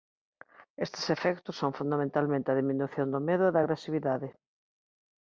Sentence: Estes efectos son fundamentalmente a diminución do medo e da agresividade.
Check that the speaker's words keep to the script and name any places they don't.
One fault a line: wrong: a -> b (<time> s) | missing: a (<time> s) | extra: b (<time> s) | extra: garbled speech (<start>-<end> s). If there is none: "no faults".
no faults